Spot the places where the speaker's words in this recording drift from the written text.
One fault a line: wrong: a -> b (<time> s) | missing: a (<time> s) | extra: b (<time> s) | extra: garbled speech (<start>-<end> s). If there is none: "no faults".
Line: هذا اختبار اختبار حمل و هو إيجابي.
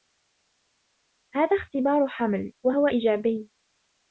missing: اختبار (2.1 s)